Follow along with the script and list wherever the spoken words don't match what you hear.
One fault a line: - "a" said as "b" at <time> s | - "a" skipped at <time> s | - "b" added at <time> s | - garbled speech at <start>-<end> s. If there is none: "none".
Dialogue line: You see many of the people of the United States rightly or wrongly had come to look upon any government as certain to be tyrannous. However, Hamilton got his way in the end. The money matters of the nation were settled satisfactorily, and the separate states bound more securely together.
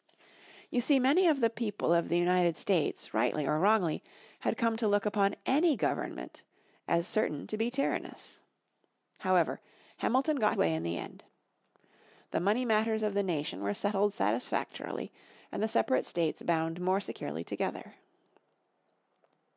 - "his" skipped at 10.6 s